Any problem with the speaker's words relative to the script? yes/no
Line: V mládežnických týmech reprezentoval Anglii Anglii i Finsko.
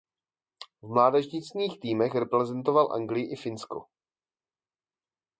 yes